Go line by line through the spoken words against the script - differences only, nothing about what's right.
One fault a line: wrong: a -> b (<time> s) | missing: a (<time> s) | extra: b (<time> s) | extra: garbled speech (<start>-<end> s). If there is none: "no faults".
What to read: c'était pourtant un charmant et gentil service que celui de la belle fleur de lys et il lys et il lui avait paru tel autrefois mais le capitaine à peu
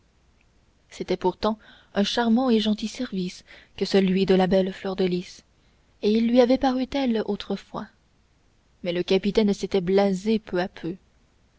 missing: lys et il (6.3 s)
extra: s'était blasé peu (9.5 s)